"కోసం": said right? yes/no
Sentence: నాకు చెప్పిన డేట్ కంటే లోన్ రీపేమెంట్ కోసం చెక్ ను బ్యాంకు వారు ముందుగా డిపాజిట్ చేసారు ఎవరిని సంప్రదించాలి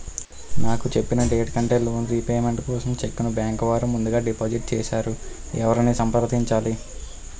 yes